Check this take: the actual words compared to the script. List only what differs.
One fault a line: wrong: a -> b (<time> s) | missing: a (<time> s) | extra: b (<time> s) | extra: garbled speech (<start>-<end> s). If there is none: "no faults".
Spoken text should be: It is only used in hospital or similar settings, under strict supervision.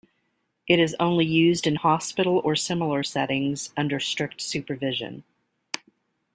no faults